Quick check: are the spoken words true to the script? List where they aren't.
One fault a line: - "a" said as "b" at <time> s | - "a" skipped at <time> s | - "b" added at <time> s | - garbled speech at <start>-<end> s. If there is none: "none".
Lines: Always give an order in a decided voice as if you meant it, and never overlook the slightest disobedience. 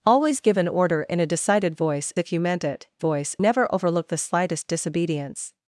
- "as" skipped at 2.1 s
- "and" said as "voice" at 3.0 s